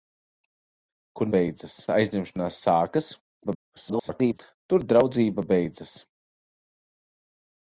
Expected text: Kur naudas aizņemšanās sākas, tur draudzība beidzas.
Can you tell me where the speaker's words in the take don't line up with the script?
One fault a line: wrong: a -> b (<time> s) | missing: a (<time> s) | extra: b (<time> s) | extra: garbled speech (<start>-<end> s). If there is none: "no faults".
wrong: naudas -> beidzas (1.3 s)
extra: garbled speech (3.4-4.4 s)